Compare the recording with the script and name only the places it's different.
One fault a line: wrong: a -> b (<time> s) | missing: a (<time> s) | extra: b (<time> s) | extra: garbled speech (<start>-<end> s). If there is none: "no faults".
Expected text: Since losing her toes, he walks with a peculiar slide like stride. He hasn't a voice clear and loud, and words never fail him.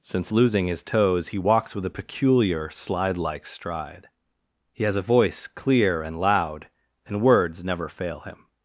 wrong: her -> his (0.7 s)
wrong: hasn't -> has (4.8 s)